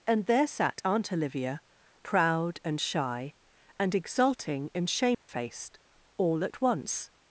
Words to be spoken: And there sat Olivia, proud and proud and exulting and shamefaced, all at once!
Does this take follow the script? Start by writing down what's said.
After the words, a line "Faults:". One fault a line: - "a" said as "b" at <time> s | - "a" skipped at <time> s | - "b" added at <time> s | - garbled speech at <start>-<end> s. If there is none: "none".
And there sat Aunt Olivia, proud and shy and exulting and shamefaced, all at once!
Faults:
- "Aunt" added at 0.8 s
- "proud" said as "shy" at 2.8 s